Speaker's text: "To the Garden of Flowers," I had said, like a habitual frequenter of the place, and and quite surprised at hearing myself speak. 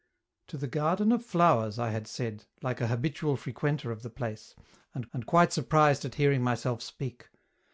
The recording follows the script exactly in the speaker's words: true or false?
true